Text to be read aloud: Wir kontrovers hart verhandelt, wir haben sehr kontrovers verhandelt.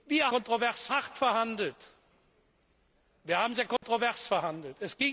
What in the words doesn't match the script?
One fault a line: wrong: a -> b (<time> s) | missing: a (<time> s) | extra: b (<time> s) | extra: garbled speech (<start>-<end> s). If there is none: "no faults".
no faults